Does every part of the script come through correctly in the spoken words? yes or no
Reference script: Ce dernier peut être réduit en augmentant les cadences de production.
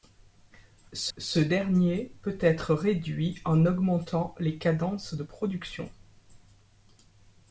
no